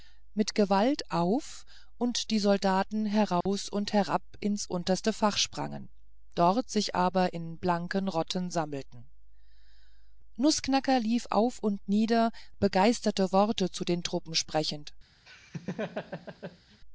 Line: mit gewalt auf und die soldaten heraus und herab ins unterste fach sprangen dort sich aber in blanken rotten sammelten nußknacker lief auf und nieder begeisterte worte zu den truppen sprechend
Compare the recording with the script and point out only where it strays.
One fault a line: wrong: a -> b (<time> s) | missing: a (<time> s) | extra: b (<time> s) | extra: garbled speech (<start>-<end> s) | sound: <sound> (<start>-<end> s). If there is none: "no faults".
sound: dropout (3.4-3.5 s)
sound: laugh (15.3-16.8 s)